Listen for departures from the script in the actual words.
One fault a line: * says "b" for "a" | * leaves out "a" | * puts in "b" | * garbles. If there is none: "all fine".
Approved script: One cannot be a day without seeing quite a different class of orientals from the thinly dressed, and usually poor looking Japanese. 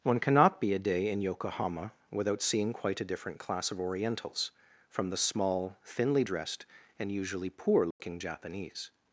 * puts in "in Yokohama"
* puts in "small"